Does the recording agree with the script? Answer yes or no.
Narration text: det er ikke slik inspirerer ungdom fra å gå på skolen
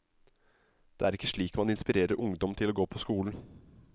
no